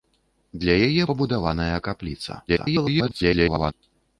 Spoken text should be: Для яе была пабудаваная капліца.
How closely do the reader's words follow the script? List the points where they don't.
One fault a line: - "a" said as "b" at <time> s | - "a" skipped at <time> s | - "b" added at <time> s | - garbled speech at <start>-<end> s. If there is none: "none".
- "была" skipped at 1.0 s
- garbled speech at 2.5-3.7 s